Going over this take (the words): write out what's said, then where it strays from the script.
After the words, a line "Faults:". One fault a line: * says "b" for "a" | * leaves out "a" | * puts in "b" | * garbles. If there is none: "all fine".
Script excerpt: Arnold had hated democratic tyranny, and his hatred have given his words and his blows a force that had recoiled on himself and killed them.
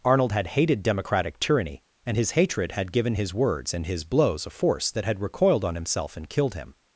Arnold had hated democratic tyranny, and his hatred had given his words and his blows a force that had recoiled on himself and killed him.
Faults:
* says "had" for "have"
* says "him" for "them"